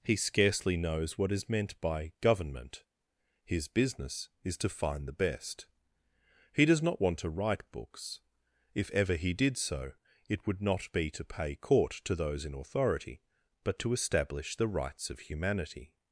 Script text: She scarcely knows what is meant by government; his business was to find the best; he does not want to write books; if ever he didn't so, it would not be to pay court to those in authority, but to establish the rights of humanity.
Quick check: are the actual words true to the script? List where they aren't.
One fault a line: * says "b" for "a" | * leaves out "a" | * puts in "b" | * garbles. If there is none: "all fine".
* says "He" for "She"
* says "is" for "was"
* says "did" for "didn't"